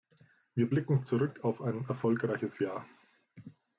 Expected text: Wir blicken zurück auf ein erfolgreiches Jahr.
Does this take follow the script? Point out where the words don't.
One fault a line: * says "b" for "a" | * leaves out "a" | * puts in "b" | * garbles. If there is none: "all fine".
all fine